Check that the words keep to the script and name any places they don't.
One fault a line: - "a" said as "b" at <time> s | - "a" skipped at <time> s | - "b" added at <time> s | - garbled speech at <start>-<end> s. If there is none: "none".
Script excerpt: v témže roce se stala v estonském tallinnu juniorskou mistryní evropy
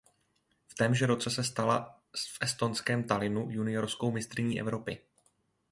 none